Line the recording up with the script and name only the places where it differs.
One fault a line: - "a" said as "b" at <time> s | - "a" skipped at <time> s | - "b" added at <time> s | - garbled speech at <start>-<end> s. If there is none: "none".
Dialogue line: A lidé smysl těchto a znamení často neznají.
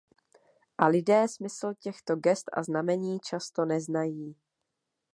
- "gest" added at 2.1 s